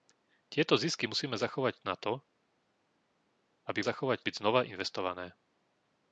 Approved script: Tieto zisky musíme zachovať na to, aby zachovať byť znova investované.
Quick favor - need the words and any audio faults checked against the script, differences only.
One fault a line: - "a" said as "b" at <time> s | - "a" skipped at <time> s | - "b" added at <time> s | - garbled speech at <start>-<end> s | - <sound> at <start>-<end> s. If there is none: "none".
none